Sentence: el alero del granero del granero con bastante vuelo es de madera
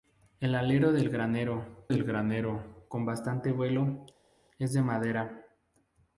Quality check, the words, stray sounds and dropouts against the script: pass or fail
pass